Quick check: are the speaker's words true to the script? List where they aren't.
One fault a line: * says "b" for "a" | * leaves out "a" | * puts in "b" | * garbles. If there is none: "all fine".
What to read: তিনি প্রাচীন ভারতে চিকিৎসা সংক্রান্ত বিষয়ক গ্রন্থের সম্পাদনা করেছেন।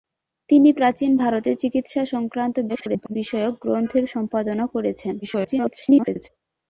* garbles
* garbles